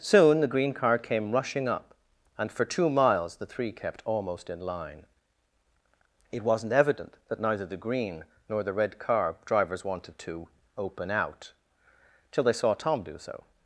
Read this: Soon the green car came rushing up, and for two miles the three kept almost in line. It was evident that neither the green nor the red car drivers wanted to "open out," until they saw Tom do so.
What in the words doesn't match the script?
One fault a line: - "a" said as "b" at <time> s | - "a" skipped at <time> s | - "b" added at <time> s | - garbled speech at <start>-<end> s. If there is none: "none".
- "was" said as "wasn't" at 6.4 s
- "until" said as "till" at 12.3 s